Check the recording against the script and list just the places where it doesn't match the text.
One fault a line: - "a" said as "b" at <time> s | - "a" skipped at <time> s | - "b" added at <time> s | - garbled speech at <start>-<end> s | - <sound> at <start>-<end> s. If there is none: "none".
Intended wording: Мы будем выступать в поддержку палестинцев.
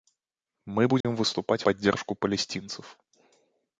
- dropout at 1.0-1.0 s
- "в" skipped at 1.6 s